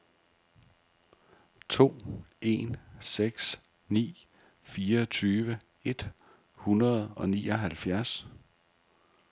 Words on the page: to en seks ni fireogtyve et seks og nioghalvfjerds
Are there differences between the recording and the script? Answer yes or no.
yes